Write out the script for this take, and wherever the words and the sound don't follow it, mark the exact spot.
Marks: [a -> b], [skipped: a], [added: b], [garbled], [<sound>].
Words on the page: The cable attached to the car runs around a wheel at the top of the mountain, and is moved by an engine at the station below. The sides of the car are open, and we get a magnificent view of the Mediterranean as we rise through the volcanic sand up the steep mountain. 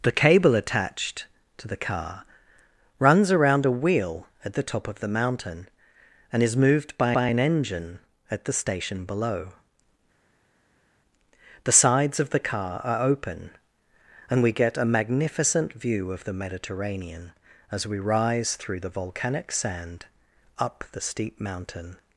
The cable attached to the car runs around a wheel at the top of the mountain, and is moved by [added: by] an engine at the station below. The sides of the car are open, and we get a magnificent view of the Mediterranean as we rise through the volcanic sand up the steep mountain.